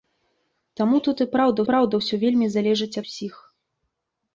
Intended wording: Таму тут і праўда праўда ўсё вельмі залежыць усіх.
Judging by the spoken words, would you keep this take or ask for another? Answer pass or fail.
pass